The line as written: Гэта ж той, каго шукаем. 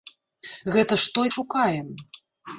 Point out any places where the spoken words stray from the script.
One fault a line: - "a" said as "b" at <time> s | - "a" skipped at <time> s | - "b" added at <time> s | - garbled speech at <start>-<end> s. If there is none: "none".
- "каго" skipped at 1.3 s